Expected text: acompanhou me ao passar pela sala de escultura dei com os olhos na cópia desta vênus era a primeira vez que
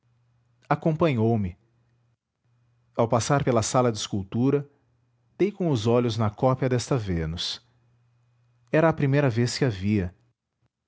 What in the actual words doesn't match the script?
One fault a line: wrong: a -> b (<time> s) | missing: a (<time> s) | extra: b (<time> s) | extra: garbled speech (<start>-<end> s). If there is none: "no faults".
no faults